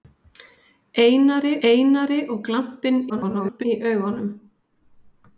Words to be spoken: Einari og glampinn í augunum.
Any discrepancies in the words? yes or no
yes